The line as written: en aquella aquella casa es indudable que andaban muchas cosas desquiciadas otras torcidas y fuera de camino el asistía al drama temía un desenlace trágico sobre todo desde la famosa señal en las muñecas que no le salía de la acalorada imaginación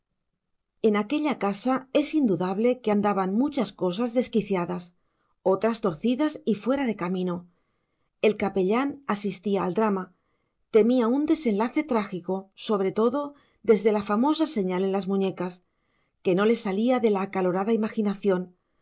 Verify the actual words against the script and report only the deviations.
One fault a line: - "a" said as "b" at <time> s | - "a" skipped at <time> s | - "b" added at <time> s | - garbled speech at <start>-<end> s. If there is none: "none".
- "aquella" skipped at 1.4 s
- "capellán" added at 8.4 s